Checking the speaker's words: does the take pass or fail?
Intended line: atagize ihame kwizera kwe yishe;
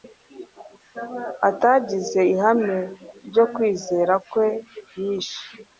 fail